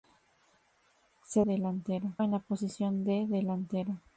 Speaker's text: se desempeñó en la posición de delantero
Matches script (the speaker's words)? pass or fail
fail